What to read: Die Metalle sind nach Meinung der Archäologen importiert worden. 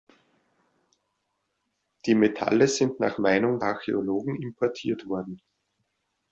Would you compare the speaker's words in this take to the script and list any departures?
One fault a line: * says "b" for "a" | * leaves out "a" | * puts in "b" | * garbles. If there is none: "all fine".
* leaves out "der"